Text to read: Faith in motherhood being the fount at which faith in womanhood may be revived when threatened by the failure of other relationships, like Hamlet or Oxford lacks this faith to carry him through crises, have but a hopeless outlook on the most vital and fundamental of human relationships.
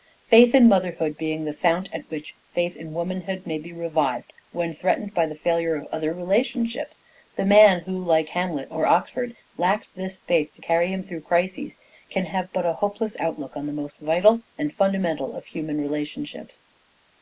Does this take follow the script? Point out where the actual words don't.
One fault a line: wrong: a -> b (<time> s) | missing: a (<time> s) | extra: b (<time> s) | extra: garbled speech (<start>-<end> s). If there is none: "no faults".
extra: the man who (7.3 s)
extra: can (12.1 s)